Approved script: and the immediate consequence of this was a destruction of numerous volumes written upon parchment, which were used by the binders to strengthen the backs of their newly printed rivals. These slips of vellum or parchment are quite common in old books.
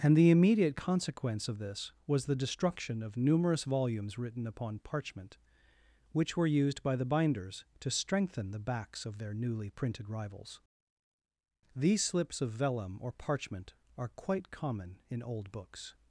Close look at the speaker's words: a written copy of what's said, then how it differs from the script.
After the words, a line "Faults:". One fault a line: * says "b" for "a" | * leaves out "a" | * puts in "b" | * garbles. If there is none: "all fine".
and the immediate consequence of this was the destruction of numerous volumes written upon parchment, which were used by the binders to strengthen the backs of their newly printed rivals. These slips of vellum or parchment are quite common in old books.
Faults:
* says "the" for "a"